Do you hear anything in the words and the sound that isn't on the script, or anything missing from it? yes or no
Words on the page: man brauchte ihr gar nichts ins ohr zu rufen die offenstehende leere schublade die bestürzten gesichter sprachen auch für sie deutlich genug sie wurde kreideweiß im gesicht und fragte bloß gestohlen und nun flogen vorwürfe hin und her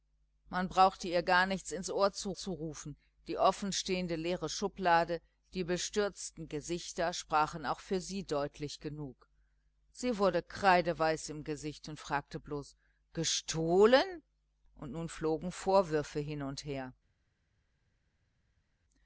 yes